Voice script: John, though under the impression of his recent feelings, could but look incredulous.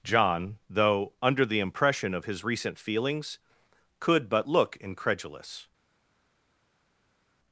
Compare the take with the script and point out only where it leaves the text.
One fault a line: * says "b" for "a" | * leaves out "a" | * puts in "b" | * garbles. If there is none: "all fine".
all fine